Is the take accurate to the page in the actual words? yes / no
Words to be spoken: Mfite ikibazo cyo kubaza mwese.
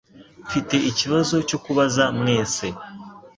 yes